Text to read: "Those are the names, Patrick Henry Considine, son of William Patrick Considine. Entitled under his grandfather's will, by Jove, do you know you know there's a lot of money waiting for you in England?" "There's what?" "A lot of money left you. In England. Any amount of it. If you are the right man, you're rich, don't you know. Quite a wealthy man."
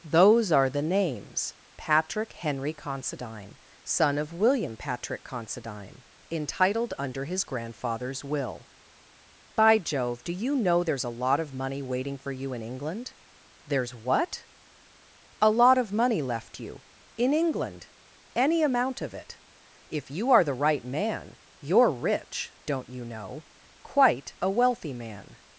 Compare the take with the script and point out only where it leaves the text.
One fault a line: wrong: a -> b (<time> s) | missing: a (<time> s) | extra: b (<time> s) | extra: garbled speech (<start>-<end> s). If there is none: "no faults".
missing: you know (10.8 s)